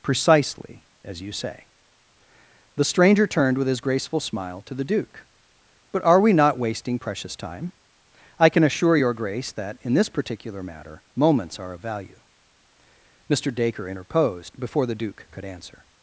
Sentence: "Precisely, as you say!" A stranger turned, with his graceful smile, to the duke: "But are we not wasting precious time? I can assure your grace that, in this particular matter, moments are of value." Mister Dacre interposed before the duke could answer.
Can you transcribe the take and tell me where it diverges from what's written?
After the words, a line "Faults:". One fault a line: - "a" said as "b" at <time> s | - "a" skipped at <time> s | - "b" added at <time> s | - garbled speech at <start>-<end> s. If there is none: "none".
"Precisely, as you say!" The stranger turned, with his graceful smile, to the duke: "But are we not wasting precious time? I can assure your grace that, in this particular matter, moments are of value." Mister Dacre interposed before the duke could answer.
Faults:
- "A" said as "The" at 2.8 s